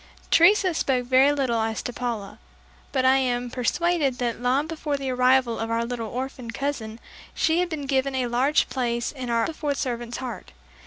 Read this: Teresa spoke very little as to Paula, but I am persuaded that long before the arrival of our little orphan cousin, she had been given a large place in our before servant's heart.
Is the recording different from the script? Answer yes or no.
no